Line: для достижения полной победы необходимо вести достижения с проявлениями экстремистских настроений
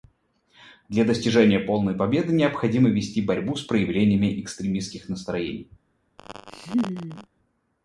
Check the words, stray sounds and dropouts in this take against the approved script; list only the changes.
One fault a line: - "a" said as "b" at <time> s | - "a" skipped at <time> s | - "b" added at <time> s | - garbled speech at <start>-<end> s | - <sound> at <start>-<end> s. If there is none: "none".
- "достижения" said as "борьбу" at 3.2 s
- laugh at 6.2-7.3 s